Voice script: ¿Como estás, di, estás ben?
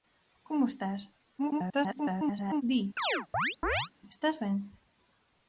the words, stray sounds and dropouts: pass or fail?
fail